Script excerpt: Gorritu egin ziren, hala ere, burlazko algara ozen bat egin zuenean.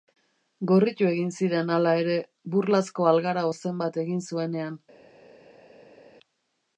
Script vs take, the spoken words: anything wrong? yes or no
no